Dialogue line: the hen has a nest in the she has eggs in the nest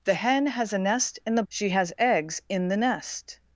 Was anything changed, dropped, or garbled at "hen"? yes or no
no